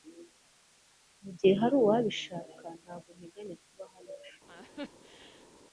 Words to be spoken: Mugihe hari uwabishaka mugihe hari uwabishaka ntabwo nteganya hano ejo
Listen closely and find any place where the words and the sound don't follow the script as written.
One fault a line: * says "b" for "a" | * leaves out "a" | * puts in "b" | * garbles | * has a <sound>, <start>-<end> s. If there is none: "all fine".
* leaves out "mugihe hari uwabishaka"
* puts in "kuba"
* has a laugh, 4.5-5.5 s